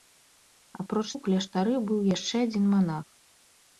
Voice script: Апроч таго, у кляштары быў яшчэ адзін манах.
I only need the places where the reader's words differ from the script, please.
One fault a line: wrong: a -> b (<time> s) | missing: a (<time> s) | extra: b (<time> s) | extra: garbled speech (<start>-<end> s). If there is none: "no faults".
missing: таго (1.0 s)